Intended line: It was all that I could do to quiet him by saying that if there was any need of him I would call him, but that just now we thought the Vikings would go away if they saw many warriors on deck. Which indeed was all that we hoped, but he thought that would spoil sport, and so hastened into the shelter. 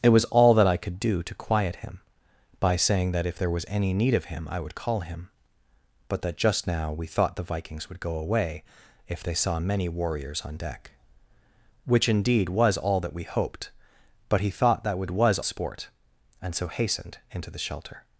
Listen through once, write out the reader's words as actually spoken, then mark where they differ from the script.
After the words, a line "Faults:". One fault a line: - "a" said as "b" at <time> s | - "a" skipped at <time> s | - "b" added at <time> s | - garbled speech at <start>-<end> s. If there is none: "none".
It was all that I could do to quiet him by saying that if there was any need of him I would call him, but that just now we thought the Vikings would go away if they saw many warriors on deck. Which indeed was all that we hoped, but he thought that would was sport, and so hastened into the shelter.
Faults:
- "spoil" said as "was" at 15.1 s